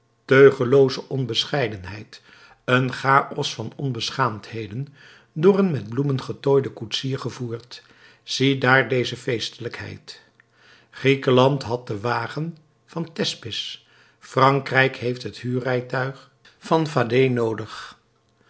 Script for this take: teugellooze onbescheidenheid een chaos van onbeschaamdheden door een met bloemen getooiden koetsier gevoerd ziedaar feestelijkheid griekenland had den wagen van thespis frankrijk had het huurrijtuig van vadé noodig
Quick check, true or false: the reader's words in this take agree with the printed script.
false